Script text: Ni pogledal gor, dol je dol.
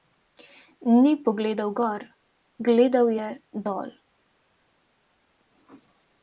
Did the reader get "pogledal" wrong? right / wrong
right